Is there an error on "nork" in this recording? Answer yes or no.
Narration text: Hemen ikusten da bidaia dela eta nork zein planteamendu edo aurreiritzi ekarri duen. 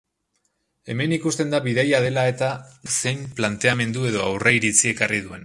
yes